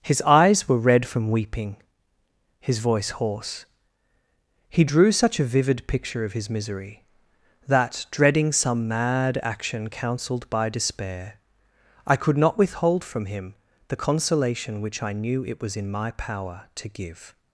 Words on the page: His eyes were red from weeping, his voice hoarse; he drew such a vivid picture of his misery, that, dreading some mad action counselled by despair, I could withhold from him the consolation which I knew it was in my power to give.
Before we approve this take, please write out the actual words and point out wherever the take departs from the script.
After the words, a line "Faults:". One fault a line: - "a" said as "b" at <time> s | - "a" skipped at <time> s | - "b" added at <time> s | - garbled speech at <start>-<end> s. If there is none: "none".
His eyes were red from weeping, his voice hoarse; he drew such a vivid picture of his misery, that, dreading some mad action counselled by despair, I could not withhold from him the consolation which I knew it was in my power to give.
Faults:
- "not" added at 12.4 s